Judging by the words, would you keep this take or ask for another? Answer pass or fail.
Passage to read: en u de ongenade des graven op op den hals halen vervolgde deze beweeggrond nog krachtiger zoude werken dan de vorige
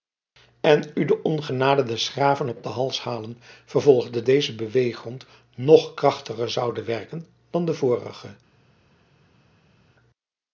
pass